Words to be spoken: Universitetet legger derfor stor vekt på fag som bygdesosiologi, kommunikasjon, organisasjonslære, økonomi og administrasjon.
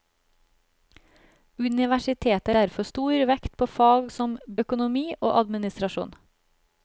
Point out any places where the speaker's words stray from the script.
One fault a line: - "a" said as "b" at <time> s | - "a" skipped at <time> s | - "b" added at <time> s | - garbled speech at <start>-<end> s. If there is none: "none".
- "legger" skipped at 2.5 s
- "bygdesosiologi kommunikasjon organisasjonslære" skipped at 4.4 s